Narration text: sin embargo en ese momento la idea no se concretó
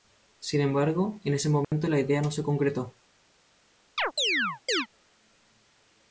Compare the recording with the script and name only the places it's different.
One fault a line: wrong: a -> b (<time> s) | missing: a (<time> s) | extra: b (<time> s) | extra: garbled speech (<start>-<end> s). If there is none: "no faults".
no faults